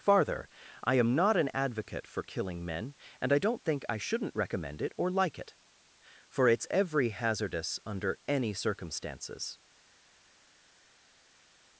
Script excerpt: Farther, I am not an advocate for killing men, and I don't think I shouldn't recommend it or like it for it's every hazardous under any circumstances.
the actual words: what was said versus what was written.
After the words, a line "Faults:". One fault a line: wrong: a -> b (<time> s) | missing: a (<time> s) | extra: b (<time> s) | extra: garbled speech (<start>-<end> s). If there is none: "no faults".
Farther, I am not an advocate for killing men, and I don't think I shouldn't recommend it or like it for it's every hazardous under any circumstances.
Faults:
no faults